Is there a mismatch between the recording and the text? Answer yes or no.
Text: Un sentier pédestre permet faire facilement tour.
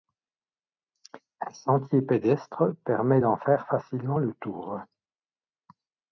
yes